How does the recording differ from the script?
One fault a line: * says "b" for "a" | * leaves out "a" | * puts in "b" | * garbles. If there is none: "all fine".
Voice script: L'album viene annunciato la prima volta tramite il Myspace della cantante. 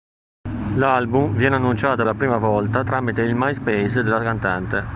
all fine